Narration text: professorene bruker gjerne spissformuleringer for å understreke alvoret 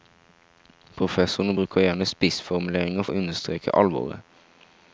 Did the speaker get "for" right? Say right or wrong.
wrong